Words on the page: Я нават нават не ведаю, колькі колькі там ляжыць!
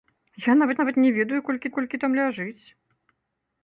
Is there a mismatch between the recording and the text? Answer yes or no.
no